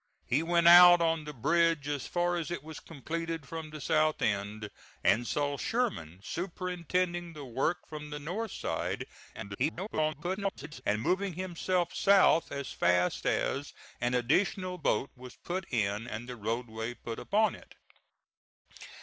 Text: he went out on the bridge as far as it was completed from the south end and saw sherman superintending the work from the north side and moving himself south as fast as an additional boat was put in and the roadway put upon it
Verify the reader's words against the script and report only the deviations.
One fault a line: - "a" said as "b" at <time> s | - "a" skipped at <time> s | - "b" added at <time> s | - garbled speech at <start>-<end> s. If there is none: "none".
- garbled speech at 9.3-10.8 s